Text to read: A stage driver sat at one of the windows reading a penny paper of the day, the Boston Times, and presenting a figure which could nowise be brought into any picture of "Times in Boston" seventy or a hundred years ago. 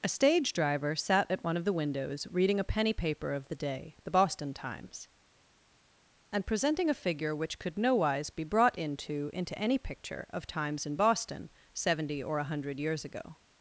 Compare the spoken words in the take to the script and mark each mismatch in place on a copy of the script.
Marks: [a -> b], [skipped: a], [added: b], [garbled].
A stage driver sat at one of the windows reading a penny paper of the day, the Boston Times, and presenting a figure which could nowise be brought into [added: into] any picture of "Times in Boston" seventy or a hundred years ago.